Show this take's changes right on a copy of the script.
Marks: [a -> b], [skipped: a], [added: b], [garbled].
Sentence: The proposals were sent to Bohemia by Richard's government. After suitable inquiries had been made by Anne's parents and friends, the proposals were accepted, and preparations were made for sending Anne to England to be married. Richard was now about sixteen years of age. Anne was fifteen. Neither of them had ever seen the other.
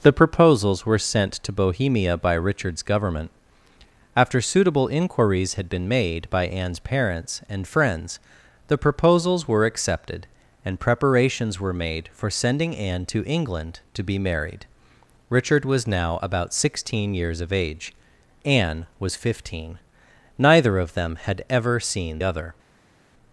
The proposals were sent to Bohemia by Richard's government. After suitable inquiries had been made by Anne's parents and friends, the proposals were accepted, and preparations were made for sending Anne to England to be married. Richard was now about sixteen years of age. Anne was fifteen. Neither of them had ever seen [skipped: the] other.